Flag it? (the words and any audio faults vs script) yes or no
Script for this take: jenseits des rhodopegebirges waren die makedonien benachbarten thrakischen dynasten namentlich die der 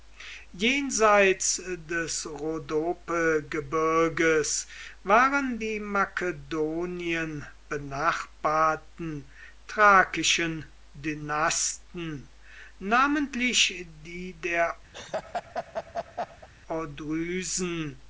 yes